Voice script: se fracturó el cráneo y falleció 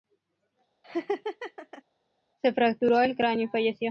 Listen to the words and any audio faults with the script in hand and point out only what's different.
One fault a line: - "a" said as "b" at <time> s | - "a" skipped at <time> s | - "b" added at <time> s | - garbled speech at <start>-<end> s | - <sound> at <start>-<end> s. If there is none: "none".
- laugh at 0.8-1.8 s